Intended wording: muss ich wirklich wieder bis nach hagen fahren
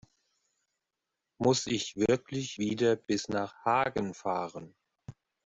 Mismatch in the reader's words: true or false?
false